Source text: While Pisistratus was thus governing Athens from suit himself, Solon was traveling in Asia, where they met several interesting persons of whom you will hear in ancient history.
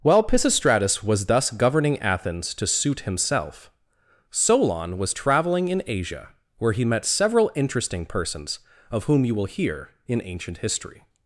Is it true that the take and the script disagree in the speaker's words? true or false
true